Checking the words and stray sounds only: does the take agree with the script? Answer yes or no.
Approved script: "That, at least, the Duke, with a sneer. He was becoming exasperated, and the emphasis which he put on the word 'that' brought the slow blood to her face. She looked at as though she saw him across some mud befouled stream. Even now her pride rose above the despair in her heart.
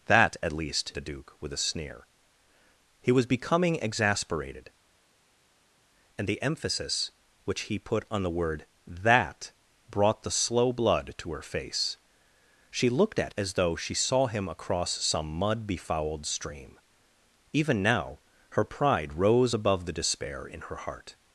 yes